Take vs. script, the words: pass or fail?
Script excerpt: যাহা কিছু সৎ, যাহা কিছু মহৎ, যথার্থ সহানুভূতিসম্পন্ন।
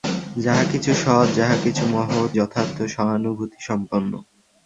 pass